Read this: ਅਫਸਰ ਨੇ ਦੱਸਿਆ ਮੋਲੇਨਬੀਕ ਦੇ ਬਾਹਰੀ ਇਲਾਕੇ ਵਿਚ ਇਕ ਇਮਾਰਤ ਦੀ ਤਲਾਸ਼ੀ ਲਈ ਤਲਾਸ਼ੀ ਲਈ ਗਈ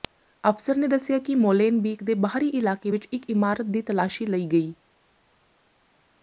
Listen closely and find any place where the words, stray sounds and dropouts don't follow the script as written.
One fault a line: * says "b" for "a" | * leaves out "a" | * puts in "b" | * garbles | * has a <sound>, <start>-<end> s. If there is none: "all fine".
* puts in "ਕਿ"
* leaves out "ਤਲਾਸ਼ੀ ਲਈ"